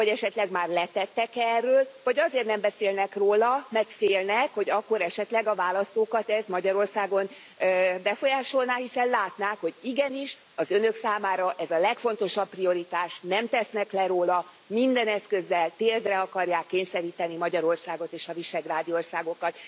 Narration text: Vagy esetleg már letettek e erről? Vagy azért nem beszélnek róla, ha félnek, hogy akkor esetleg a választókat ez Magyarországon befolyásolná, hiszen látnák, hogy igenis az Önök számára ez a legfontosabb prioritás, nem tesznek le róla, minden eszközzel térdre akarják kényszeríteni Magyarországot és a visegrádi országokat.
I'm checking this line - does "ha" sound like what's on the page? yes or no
no